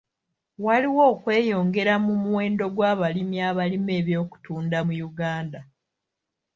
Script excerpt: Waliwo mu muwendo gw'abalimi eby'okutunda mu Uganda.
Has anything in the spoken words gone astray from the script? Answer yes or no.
yes